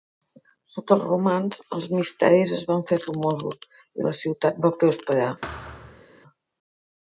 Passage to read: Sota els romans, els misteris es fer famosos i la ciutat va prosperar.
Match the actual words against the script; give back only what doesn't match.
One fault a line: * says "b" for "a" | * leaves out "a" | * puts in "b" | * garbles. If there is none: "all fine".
* puts in "van"